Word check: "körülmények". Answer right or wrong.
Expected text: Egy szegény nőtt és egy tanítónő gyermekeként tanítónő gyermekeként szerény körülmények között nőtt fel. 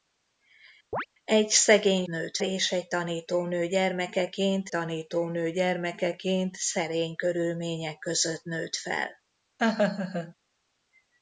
right